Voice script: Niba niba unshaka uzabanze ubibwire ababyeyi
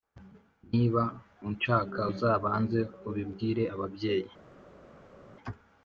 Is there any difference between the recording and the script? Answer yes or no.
yes